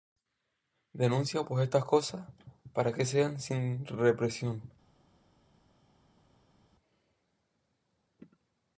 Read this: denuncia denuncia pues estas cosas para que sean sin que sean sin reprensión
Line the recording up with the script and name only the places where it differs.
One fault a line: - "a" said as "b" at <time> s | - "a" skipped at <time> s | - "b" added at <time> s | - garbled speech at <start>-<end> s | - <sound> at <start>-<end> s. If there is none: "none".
- "denuncia" skipped at 1.4 s
- "que sean sin" skipped at 3.8 s